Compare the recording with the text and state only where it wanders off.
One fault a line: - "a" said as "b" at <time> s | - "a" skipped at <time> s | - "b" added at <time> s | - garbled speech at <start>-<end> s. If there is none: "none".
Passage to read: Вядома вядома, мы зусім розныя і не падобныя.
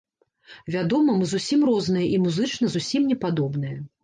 - "вядома" skipped at 1.2 s
- "музычна зусім" added at 2.2 s